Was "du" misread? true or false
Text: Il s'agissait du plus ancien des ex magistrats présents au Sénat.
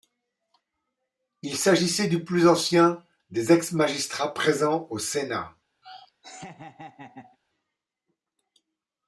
false